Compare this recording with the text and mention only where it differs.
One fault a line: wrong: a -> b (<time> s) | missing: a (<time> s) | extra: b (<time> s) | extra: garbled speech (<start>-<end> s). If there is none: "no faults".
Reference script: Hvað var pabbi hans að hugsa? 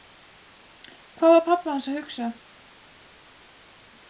no faults